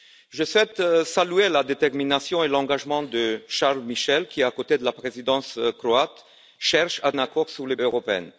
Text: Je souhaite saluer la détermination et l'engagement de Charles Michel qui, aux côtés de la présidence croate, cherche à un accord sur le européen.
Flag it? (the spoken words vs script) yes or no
no